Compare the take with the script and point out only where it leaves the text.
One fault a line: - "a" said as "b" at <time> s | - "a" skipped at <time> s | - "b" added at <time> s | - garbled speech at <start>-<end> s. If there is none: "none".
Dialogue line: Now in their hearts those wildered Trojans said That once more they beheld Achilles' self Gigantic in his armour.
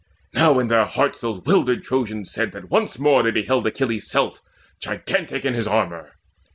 none